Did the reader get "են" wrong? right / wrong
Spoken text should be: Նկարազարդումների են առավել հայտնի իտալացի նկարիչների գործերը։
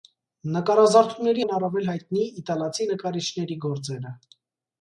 right